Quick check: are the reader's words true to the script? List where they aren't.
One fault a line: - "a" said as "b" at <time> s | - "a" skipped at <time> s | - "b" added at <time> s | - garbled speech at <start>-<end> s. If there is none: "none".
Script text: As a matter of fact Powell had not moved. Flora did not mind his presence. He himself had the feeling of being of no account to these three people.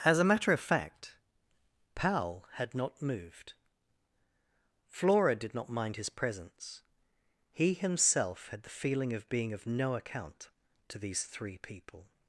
none